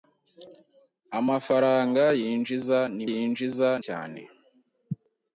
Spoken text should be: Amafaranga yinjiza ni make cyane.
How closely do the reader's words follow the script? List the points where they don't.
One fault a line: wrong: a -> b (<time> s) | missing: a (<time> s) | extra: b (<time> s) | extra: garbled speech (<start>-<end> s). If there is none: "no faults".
wrong: make -> yinjiza (3.1 s)